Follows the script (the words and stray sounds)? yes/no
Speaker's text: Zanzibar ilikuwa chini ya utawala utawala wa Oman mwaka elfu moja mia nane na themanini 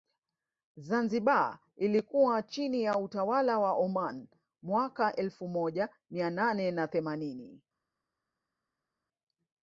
no